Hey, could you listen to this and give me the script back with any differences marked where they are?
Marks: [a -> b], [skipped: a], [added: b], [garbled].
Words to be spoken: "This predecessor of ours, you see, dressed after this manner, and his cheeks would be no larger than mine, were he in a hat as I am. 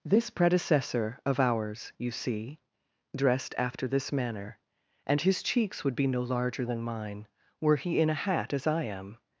"This predecessor of ours, you see, dressed after this manner, and his cheeks would be no larger than mine, were he in a hat as I am.